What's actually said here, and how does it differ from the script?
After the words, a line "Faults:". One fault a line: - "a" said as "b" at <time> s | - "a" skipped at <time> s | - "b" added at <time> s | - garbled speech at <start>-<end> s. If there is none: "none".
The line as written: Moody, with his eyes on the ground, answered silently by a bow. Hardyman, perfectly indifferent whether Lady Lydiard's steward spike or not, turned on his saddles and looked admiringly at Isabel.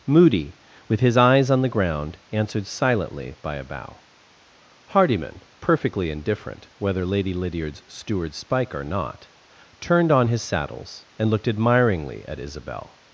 Moody, with his eyes on the ground, answered silently by a bow. Hardyman, perfectly indifferent whether Lady Lydiard's steward spike or not, turned on his saddles and looked admiringly at Isabel.
Faults:
none